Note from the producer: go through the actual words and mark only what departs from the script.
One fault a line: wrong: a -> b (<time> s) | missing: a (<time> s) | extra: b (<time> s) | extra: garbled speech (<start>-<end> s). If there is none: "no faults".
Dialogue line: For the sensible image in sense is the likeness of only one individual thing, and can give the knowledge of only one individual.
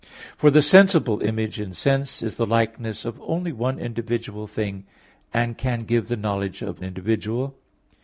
missing: only one (6.8 s)